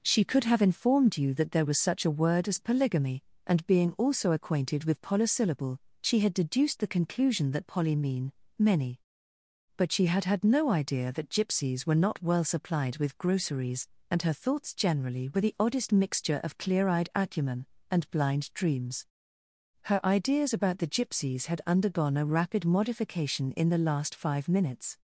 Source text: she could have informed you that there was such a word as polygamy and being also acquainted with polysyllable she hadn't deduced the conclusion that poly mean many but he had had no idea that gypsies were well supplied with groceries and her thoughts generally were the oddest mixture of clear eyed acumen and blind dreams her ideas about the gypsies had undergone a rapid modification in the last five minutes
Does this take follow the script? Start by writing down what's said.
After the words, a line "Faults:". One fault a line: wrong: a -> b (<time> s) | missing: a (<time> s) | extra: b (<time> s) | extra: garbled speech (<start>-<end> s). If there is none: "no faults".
she could have informed you that there was such a word as polygamy and being also acquainted with polysyllable she had deduced the conclusion that poly mean many but she had had no idea that gypsies were not well supplied with groceries and her thoughts generally were the oddest mixture of clear eyed acumen and blind dreams her ideas about the gypsies had undergone a rapid modification in the last five minutes
Faults:
wrong: hadn't -> had (6.2 s)
wrong: he -> she (9.9 s)
extra: not (12.0 s)